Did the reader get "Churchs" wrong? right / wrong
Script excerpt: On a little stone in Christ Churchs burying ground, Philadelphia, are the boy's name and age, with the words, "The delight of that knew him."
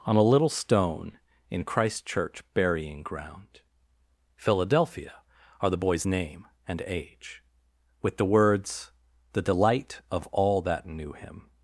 wrong